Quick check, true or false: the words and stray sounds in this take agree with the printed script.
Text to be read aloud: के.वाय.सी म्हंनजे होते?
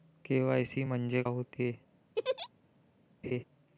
false